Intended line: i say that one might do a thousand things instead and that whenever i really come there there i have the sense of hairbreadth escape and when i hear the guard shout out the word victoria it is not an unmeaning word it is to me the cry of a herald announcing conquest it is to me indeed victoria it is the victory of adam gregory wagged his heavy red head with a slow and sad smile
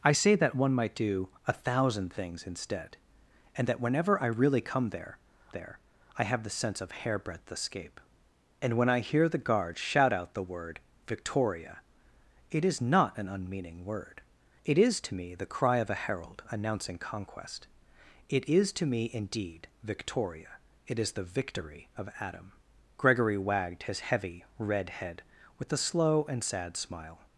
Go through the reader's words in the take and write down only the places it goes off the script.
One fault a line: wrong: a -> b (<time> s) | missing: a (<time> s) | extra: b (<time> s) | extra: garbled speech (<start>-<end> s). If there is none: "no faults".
no faults